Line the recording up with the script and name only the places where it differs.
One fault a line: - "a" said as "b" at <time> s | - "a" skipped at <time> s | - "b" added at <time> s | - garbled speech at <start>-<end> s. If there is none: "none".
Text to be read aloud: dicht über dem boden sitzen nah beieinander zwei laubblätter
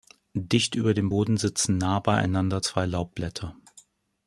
none